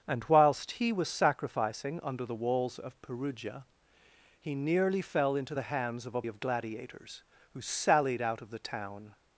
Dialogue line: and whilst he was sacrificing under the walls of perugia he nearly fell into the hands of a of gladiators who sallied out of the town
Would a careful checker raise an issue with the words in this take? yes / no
no